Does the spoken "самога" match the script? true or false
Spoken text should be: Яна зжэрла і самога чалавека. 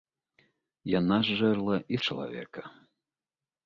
false